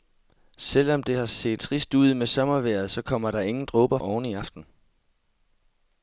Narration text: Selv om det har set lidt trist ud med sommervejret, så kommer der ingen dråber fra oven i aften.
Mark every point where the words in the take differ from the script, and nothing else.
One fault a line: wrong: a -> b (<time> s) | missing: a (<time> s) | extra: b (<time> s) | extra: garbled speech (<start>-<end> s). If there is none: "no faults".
missing: lidt (1.6 s)
missing: fra (4.0 s)